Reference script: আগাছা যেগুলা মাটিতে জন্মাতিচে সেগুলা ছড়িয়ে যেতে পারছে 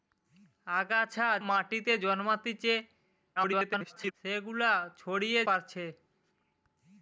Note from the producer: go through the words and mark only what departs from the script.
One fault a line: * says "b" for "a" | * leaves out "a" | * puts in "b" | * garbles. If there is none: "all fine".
* leaves out "যেগুলা"
* garbles
* leaves out "যেতে"